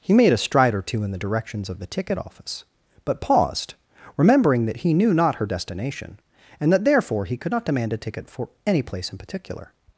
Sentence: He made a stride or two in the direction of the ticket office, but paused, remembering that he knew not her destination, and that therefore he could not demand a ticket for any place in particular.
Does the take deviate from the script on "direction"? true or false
true